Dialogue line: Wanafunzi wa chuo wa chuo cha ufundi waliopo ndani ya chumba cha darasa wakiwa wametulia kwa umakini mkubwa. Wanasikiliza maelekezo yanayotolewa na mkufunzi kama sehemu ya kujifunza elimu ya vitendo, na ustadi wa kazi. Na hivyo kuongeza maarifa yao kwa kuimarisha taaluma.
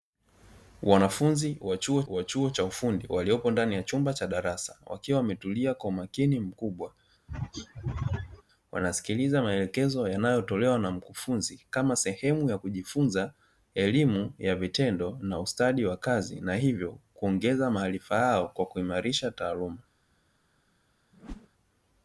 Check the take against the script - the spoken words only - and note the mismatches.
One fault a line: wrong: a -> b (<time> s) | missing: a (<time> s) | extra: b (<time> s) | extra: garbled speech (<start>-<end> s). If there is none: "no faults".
no faults